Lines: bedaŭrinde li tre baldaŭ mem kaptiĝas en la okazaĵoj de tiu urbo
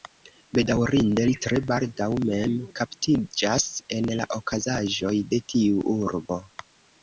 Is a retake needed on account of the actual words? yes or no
no